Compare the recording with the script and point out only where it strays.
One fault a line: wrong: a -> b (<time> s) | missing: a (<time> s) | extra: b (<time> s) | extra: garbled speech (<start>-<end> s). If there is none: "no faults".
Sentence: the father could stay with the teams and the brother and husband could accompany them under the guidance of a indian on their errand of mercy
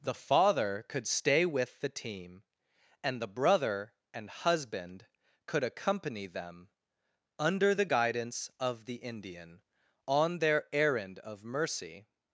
wrong: teams -> team (1.9 s)
wrong: a -> the (8.8 s)